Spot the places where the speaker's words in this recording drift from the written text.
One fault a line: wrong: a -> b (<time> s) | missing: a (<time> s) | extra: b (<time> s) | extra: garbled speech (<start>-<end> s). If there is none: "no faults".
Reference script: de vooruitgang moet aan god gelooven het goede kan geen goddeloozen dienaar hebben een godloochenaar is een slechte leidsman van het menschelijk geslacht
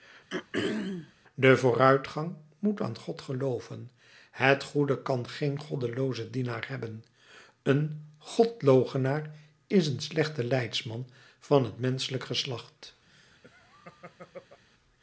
no faults